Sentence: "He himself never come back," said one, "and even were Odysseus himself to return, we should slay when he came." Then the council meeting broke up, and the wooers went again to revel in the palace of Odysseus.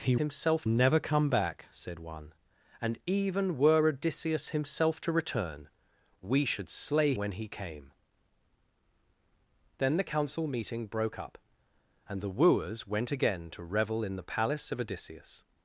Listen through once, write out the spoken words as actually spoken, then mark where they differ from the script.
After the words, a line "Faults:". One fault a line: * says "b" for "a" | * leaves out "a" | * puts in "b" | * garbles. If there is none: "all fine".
"He himself never come back," said one, "and even were Odysseus himself to return, we should slay when he came." Then the council meeting broke up, and the wooers went again to revel in the palace of Odysseus.
Faults:
all fine